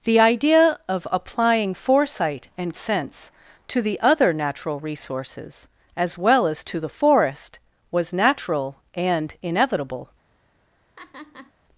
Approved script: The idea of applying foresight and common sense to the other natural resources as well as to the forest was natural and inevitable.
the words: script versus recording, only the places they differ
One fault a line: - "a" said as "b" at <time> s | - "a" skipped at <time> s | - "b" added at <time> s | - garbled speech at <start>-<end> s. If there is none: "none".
- "common" skipped at 2.8 s